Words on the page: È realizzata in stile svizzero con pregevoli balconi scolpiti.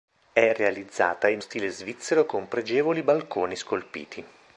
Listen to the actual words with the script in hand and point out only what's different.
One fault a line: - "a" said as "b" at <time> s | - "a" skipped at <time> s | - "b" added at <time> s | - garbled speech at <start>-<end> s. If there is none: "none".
none